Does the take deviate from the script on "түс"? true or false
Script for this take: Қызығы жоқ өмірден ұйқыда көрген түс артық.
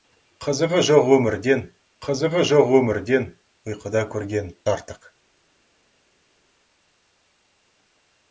true